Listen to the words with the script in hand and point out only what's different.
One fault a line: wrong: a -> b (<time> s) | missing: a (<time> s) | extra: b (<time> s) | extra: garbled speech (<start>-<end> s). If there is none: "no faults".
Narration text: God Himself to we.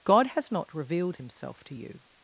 extra: has not revealed (0.3 s)
wrong: we -> you (1.7 s)